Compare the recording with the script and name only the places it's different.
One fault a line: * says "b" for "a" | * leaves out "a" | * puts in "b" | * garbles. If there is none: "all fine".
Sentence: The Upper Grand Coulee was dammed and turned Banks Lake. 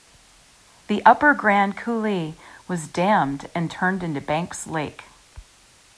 * puts in "into"